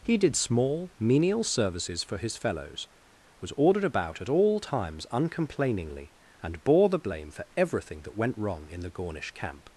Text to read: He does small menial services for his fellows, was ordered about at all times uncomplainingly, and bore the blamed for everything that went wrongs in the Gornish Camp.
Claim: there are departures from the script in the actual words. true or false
true